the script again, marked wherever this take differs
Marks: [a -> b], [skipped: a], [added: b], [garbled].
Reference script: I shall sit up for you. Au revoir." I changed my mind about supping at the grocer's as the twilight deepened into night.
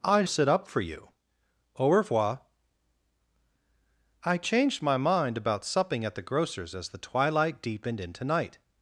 I [skipped: shall] sit up for you. Au revoir." I changed my mind about supping at the grocer's as the twilight deepened into night.